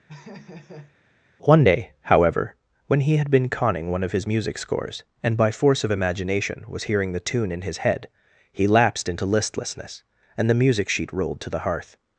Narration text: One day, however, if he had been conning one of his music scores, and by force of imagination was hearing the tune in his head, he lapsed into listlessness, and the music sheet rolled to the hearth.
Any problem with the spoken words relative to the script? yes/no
yes